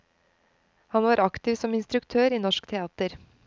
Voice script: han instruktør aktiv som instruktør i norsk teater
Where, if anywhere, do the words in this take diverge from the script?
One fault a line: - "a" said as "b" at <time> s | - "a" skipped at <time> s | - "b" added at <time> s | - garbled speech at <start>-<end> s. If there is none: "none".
- "instruktør" said as "var" at 1.0 s